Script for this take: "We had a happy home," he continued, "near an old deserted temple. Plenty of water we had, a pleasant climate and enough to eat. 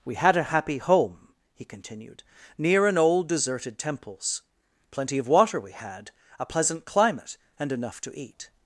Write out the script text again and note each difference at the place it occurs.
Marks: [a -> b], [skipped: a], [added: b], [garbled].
"We had a happy home," he continued, "near an old deserted [temple. -> temples] Plenty of water we had, a pleasant climate and enough to eat.